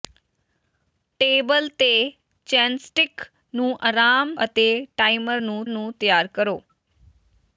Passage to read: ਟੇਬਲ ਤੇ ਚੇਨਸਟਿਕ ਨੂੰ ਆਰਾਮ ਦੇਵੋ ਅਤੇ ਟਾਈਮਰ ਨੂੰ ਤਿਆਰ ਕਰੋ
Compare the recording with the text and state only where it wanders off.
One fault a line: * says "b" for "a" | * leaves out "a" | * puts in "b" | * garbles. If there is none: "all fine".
* leaves out "ਦੇਵੋ"
* puts in "ਨੂੰ"